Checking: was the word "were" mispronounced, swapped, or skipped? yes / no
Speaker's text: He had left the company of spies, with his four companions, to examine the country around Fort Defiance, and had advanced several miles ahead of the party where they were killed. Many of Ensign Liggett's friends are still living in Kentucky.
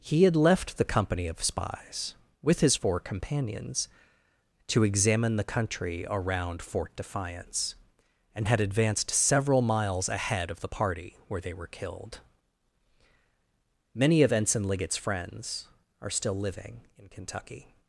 no